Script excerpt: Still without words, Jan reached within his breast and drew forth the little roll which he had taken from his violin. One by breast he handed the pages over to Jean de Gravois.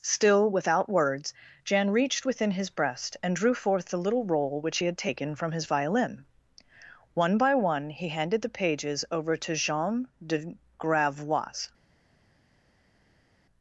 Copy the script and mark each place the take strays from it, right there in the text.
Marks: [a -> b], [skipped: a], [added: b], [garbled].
Still without words, Jan reached within his breast and drew forth the little roll which he had taken from his violin. One by [breast -> one] he handed the pages over to Jean de Gravois.